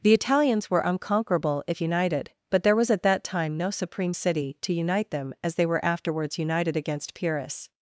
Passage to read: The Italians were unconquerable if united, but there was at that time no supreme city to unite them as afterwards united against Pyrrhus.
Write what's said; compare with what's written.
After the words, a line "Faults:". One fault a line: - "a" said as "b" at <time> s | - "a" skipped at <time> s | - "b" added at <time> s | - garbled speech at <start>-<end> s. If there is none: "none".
The Italians were unconquerable if united, but there was at that time no supreme city to unite them as they were afterwards united against Pyrrhus.
Faults:
- "they were" added at 5.6 s